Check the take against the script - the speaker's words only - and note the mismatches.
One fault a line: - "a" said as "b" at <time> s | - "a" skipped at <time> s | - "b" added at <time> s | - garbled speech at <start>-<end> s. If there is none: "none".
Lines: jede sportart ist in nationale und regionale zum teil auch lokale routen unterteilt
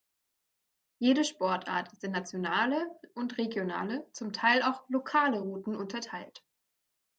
none